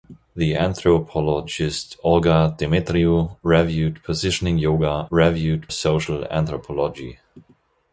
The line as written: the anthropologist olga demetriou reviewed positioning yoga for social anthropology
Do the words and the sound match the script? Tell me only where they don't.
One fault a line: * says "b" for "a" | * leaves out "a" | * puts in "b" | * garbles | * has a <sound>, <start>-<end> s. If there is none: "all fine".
* says "reviewed" for "for"